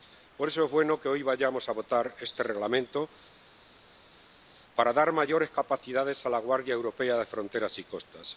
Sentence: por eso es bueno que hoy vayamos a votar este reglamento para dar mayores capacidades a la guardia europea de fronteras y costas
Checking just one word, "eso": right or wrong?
right